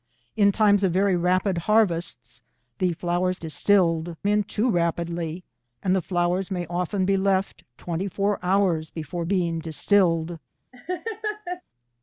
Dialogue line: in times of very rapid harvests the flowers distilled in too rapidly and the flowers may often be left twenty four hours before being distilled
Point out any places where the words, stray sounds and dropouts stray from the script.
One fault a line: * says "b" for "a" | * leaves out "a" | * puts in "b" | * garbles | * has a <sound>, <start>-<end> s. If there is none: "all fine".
* has a laugh, 10.7-11.6 s